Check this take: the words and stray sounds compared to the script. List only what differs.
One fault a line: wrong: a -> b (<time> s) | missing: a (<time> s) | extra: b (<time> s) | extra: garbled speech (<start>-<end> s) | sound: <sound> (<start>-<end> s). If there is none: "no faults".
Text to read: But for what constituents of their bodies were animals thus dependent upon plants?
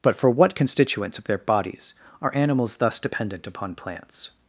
wrong: were -> are (2.2 s)